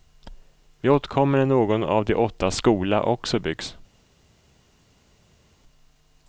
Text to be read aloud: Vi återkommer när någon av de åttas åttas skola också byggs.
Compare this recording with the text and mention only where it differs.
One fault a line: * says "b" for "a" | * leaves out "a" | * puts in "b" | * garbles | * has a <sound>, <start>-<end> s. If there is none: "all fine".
* leaves out "åttas"